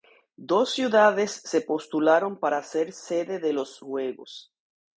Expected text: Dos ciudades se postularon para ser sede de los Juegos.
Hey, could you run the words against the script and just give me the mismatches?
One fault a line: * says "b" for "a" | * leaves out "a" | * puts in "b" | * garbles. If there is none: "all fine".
all fine